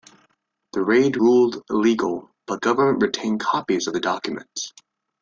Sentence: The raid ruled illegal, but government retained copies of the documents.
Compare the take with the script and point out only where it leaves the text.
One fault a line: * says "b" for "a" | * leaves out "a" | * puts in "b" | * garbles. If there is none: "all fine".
all fine